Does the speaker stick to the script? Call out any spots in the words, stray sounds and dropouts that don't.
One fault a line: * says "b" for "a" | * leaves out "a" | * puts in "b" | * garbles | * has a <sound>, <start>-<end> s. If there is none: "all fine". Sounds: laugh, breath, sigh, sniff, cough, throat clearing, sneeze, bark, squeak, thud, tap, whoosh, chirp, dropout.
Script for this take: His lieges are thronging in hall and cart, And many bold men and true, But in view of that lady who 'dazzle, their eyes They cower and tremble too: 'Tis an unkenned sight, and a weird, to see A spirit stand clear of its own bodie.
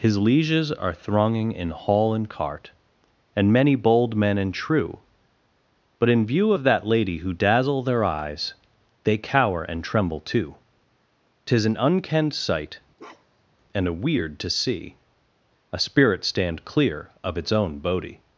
* has a bark, 13.0-13.6 s